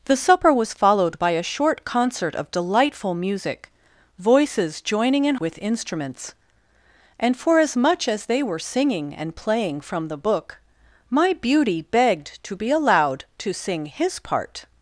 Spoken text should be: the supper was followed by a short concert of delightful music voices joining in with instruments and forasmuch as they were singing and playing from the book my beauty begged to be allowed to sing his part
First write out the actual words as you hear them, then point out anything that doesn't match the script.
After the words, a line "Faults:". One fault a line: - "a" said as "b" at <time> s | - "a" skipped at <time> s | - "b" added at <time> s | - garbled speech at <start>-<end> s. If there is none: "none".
the supper was followed by a short concert of delightful music voices joining in with instruments and forasmuch as they were singing and playing from the book my beauty begged to be allowed to sing his part
Faults:
none